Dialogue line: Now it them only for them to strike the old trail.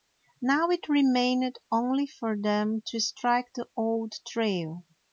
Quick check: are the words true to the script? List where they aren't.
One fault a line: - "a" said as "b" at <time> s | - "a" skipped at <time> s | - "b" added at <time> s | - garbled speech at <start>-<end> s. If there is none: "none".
- "them" said as "remained" at 0.9 s